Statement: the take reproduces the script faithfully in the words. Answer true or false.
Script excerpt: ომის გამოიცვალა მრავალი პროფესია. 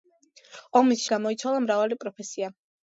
true